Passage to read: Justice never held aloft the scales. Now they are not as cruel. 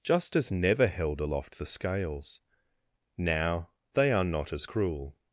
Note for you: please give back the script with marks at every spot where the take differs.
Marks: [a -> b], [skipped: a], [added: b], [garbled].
Justice never held aloft the scales. Now they are not as cruel.